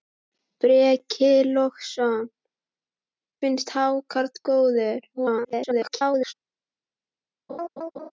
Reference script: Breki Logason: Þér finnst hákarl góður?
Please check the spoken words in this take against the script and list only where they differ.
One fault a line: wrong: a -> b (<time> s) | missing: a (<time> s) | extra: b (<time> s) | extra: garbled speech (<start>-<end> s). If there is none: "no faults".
missing: Þér (2.2 s)
extra: garbled speech (5.1-6.3 s)